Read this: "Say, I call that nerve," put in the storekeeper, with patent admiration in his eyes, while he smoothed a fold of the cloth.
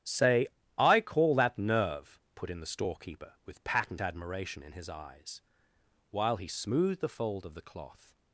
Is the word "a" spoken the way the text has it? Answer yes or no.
no